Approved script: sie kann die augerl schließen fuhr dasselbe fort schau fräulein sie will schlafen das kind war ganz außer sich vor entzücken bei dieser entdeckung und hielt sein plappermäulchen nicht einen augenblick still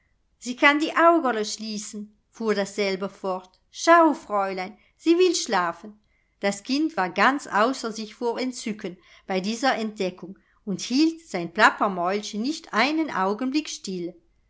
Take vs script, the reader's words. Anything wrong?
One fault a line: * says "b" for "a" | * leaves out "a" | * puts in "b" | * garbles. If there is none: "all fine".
all fine